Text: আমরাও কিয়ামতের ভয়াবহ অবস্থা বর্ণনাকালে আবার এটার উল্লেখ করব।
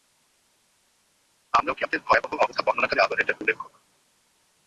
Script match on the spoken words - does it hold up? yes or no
yes